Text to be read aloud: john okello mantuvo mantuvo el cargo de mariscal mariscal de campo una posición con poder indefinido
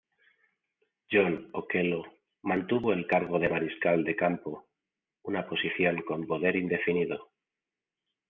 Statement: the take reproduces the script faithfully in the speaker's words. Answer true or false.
false